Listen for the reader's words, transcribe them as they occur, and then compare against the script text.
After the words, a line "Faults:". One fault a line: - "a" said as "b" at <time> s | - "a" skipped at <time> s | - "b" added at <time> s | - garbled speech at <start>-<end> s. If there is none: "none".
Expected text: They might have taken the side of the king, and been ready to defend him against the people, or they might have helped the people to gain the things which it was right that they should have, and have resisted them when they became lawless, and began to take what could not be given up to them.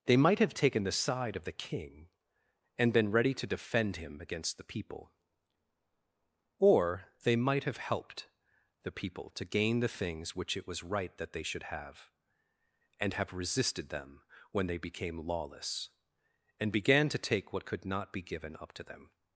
They might have taken the side of the king, and been ready to defend him against the people, or they might have helped the people to gain the things which it was right that they should have, and have resisted them when they became lawless, and began to take what could not be given up to them.
Faults:
none